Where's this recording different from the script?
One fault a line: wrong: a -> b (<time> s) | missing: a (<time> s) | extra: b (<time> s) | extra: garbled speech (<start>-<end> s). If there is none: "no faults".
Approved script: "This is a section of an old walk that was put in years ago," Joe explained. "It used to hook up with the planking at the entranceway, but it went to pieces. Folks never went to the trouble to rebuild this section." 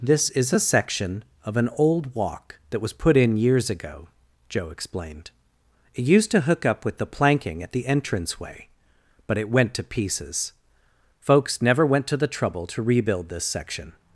no faults